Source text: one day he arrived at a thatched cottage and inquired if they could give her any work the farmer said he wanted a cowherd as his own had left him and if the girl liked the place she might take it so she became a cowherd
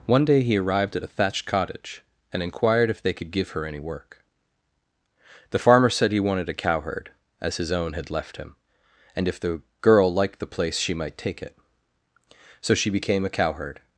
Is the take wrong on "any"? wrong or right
right